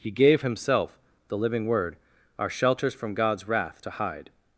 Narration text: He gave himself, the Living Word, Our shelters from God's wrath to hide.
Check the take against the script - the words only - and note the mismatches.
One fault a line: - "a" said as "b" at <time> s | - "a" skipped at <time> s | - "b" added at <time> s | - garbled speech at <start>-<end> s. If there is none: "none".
none